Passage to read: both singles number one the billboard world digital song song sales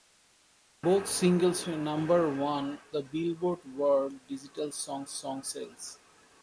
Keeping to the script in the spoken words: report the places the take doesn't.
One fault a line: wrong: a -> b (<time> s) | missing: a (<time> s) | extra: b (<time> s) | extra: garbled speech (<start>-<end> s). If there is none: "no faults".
no faults